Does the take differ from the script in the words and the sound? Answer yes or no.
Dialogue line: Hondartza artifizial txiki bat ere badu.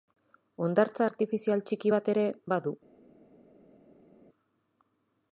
no